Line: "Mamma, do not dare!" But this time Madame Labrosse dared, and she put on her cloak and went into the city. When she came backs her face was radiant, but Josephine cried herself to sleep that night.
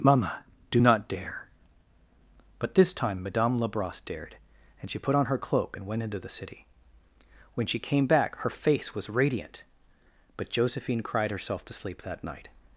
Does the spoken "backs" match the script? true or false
false